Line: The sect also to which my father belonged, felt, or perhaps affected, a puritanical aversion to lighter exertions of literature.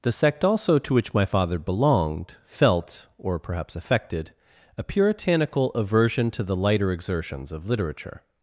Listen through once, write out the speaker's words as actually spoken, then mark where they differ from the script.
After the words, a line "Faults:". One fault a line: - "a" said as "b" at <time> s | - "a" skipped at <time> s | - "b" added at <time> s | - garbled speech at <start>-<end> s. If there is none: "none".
The sect also to which my father belonged, felt, or perhaps affected, a puritanical aversion to the lighter exertions of literature.
Faults:
- "the" added at 6.4 s